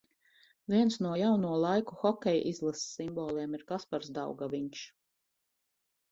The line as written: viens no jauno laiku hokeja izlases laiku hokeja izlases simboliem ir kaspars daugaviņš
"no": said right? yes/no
yes